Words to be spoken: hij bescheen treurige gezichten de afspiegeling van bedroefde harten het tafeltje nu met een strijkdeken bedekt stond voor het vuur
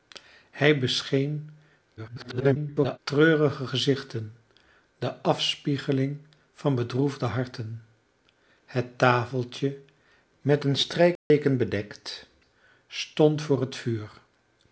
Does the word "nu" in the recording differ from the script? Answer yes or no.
yes